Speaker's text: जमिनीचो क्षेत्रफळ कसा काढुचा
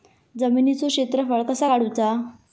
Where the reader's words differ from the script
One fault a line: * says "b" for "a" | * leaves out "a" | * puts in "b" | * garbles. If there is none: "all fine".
all fine